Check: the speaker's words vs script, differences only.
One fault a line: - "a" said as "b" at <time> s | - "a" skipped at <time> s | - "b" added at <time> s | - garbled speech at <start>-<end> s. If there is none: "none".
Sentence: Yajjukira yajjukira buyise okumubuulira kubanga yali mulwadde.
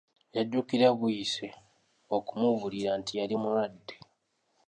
- "yajjukira" skipped at 0.9 s
- "kubanga" said as "nti" at 3.0 s